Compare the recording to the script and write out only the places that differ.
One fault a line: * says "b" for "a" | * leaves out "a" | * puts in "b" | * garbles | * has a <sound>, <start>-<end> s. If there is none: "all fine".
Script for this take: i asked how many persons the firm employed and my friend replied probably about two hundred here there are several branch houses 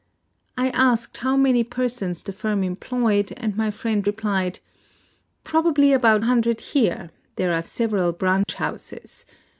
* leaves out "two"
* has a dropout, 8.4-8.5 s